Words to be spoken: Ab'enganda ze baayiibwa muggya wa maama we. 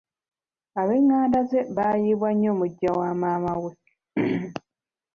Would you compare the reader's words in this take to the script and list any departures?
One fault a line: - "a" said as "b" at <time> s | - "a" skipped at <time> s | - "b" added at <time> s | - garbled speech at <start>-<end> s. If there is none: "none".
- "nnyo" added at 2.3 s